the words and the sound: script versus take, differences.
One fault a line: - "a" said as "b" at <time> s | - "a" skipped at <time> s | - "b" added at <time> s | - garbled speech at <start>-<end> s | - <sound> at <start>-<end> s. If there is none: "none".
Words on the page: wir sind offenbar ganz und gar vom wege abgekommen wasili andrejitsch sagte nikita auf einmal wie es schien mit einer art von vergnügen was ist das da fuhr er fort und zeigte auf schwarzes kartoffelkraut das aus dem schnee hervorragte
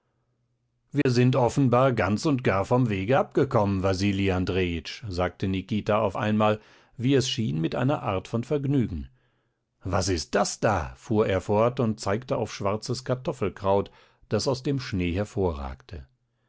- dropout at 1.0-1.1 s